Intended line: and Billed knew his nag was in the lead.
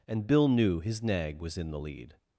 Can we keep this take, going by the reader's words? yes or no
no